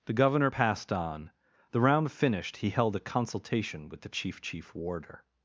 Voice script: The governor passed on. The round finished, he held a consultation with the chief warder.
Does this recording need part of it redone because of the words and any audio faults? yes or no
yes